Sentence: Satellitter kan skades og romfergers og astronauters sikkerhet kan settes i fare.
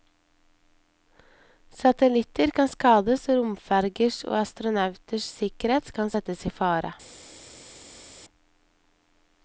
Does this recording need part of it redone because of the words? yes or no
no